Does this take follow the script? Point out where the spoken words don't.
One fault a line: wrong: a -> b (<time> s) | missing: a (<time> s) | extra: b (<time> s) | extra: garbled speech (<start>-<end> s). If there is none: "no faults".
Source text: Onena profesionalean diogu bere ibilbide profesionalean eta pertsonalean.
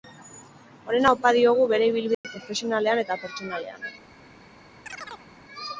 wrong: profesionalean -> opa (1.2 s)